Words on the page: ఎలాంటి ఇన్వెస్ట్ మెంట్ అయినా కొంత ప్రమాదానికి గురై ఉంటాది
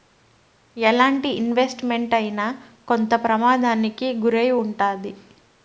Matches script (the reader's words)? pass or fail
pass